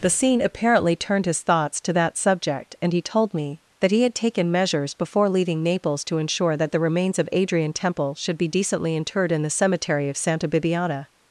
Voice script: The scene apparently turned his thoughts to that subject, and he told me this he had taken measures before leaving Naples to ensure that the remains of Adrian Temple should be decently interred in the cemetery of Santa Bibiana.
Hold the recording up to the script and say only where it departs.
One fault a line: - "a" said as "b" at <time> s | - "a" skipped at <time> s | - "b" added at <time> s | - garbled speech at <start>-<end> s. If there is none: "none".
- "this" said as "that" at 3.8 s